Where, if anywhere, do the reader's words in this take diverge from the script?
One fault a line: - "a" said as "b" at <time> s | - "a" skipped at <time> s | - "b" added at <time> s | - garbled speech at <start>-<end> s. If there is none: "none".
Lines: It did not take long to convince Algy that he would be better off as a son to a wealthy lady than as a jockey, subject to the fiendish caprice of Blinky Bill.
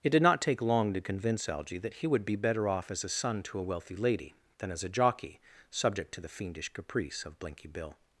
none